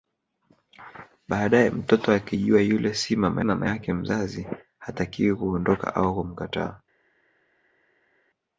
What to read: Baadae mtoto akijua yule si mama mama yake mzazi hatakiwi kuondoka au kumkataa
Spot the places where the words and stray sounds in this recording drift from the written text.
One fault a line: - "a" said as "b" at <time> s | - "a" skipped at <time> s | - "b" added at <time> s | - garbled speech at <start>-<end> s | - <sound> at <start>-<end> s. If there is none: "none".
none